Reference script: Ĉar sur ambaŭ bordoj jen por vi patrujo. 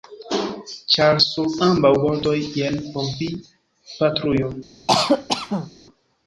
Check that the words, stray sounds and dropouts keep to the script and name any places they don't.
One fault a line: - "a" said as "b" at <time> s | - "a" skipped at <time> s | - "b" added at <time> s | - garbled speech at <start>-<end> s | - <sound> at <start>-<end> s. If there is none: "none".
- cough at 4.9-5.7 s